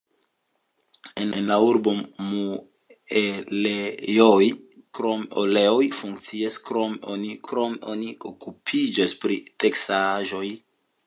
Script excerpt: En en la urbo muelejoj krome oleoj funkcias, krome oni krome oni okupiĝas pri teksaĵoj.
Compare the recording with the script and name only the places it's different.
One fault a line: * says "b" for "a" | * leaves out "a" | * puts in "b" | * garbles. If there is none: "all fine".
all fine